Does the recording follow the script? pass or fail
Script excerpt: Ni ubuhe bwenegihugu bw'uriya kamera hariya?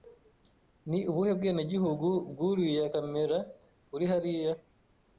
fail